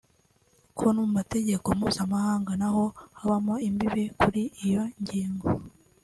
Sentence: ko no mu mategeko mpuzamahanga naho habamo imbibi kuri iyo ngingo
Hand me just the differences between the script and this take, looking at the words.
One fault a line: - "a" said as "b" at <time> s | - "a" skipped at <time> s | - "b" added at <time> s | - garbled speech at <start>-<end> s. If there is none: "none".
none